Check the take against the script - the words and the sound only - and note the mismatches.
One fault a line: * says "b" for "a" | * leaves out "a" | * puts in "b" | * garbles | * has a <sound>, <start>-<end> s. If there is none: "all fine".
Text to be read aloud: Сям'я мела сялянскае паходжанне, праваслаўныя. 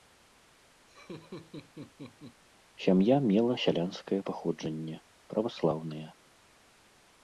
* has a laugh, 0.9-2.4 s